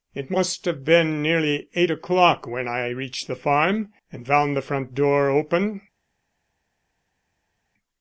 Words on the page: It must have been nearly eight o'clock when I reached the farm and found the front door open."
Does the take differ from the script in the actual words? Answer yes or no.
no